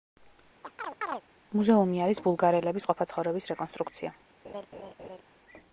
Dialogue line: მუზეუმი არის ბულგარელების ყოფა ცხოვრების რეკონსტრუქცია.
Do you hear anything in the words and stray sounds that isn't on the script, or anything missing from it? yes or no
yes